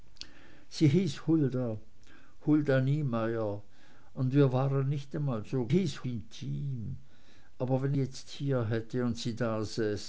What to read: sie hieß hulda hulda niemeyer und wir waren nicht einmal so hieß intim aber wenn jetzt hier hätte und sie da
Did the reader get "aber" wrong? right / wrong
right